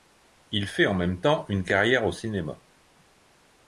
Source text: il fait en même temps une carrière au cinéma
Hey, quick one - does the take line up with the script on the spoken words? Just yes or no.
yes